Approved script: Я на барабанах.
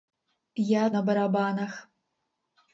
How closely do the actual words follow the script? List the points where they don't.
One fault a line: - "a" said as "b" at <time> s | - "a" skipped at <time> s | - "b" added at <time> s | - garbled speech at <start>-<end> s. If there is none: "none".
none